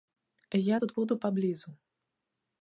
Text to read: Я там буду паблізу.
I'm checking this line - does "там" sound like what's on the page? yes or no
no